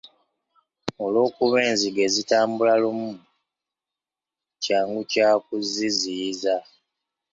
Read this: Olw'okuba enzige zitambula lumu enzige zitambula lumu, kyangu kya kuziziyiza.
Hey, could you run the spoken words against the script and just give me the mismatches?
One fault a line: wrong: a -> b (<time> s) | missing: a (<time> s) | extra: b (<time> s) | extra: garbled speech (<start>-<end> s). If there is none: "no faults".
missing: enzige zitambula lumu (3.1 s)